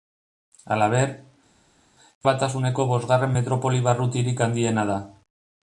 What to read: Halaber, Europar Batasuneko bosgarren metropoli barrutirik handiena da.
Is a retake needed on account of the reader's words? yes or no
yes